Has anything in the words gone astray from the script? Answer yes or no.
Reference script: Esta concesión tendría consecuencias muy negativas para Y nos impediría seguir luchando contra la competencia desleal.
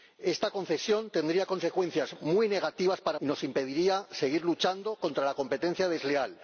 no